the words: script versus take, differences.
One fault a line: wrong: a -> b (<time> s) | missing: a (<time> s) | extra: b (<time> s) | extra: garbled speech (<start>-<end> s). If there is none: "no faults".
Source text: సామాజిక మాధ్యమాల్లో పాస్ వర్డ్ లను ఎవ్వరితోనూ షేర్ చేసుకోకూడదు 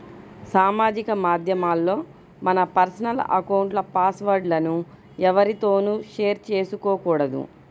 extra: మన పర్సనల్ అకౌంట్ల (2.4 s)